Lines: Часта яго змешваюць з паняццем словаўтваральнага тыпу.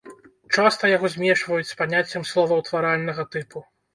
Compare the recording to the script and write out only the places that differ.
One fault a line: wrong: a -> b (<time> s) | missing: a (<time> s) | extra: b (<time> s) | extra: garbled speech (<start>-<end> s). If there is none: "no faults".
no faults